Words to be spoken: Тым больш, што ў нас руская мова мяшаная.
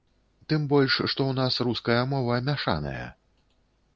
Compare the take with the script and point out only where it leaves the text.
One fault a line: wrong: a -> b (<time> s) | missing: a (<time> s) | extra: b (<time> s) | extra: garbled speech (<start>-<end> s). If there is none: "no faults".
no faults